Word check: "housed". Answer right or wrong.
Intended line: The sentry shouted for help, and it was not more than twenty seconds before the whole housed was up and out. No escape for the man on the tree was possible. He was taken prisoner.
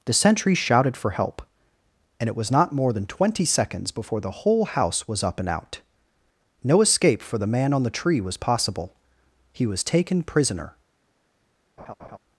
wrong